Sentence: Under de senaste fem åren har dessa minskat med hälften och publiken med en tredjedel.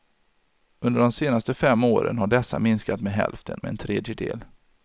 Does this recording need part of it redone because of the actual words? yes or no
yes